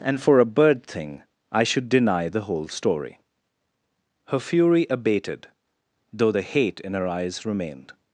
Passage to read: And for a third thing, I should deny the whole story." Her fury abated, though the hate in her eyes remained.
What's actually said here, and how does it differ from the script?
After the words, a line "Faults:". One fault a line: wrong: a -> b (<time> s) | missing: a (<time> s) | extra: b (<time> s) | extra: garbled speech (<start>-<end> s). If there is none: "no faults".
And for a bird thing, I should deny the whole story." Her fury abated, though the hate in her eyes remained.
Faults:
wrong: third -> bird (0.5 s)